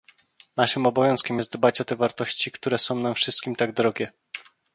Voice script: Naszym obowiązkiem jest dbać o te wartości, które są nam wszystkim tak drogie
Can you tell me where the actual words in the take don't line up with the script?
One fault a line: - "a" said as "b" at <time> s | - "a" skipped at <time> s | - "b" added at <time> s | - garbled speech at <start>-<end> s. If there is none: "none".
none